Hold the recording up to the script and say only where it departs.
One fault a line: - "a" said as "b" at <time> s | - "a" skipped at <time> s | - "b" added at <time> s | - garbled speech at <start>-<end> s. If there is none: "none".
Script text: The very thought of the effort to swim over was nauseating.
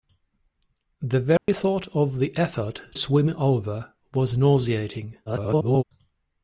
- "to" skipped at 2.8 s
- garbled speech at 5.3-5.8 s